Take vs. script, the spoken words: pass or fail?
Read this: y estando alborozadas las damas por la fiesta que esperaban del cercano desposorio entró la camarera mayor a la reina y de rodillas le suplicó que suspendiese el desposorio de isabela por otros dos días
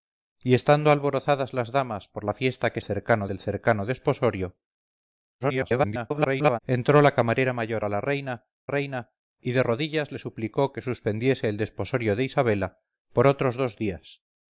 fail